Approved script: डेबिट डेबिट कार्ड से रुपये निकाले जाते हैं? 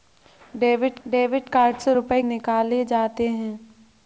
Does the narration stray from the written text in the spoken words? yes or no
no